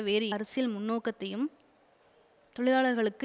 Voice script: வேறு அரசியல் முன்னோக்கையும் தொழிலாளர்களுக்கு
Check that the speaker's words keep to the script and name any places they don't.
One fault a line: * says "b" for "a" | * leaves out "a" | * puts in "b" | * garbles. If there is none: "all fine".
all fine